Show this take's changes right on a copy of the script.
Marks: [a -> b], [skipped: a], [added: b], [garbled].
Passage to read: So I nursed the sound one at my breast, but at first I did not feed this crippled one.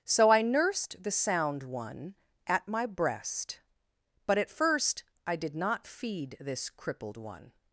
So I nursed the sound one at my breast, but at first I did not feed this crippled one.